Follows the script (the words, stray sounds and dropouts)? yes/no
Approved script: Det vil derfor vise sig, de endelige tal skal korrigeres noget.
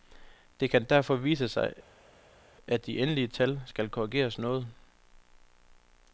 no